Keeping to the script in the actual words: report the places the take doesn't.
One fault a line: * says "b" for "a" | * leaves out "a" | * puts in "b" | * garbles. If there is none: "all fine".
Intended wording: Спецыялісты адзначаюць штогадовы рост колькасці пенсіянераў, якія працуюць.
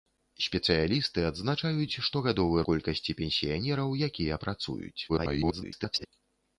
* leaves out "рост"
* garbles